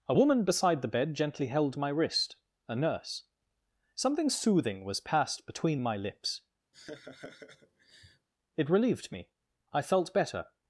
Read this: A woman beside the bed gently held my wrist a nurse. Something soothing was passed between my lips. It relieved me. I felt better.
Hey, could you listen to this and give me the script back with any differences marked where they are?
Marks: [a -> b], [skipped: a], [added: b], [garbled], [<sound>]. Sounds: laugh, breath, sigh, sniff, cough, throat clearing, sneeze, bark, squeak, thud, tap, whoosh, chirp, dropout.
A woman beside the bed gently held my wrist a nurse. Something soothing was passed between my lips. [laugh] It relieved me. I felt better.